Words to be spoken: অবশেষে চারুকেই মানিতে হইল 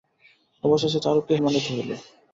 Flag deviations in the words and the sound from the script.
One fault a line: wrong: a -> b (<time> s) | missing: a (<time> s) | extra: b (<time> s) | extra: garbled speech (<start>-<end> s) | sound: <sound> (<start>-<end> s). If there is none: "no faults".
no faults